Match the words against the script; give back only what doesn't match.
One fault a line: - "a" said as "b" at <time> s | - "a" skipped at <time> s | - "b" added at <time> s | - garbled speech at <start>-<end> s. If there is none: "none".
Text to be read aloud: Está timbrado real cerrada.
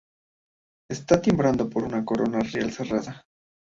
- "por una corona" added at 1.7 s